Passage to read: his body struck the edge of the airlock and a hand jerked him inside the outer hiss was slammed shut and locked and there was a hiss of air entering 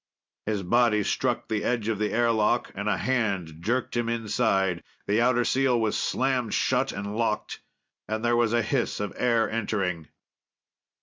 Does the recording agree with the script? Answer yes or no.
no